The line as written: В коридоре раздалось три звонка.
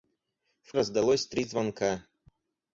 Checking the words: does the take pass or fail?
fail